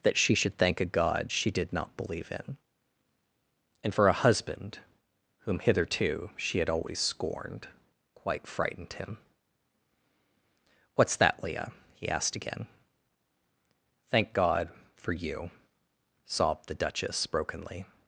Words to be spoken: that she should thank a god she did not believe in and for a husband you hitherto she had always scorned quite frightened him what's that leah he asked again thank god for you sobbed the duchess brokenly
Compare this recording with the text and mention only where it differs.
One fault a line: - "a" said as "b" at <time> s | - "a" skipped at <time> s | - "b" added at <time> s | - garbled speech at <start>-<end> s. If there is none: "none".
- "you" said as "whom" at 5.5 s